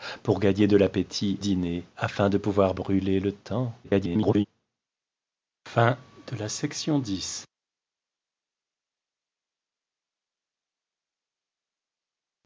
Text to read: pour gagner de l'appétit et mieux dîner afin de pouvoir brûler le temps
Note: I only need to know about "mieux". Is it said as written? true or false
false